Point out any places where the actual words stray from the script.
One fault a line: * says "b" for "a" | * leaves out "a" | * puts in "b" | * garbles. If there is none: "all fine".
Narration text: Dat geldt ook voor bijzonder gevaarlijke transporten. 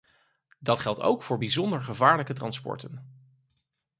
all fine